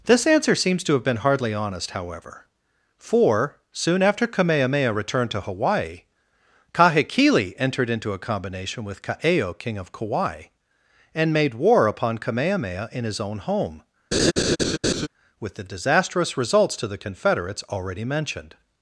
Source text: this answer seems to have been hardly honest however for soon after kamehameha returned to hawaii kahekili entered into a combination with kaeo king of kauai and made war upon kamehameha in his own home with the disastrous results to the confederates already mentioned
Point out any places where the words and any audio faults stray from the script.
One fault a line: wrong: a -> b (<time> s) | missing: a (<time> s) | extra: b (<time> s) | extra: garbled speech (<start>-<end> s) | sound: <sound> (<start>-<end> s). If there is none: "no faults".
sound: laugh (14.1-15.1 s)